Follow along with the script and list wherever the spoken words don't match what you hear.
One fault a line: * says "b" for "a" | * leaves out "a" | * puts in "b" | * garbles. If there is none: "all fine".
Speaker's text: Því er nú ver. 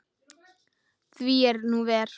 all fine